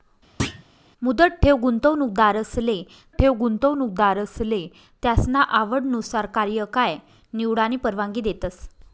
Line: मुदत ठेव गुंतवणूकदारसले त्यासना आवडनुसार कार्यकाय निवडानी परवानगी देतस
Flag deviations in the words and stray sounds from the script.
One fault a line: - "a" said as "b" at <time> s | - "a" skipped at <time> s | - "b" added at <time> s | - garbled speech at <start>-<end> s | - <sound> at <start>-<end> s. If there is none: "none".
- thud at 0.4-0.6 s
- "ठेव गुंतवणूकदारसले" added at 3.2 s